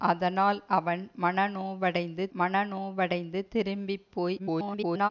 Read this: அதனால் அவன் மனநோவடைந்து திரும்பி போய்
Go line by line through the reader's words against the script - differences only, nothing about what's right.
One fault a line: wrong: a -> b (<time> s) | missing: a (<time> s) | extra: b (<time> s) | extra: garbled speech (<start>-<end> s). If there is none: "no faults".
extra: மனநோவடைந்து (2.4 s)
extra: garbled speech (4.4-5.1 s)